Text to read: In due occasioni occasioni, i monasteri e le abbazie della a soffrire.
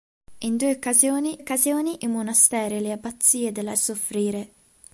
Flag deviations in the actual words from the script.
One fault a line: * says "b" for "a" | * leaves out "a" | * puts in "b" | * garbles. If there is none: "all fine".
all fine